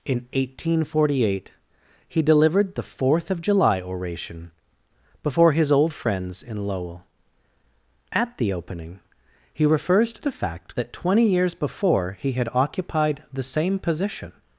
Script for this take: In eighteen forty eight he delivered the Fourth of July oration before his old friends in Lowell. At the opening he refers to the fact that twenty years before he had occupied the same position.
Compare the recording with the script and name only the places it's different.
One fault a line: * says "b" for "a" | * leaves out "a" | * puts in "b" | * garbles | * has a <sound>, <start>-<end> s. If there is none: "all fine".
all fine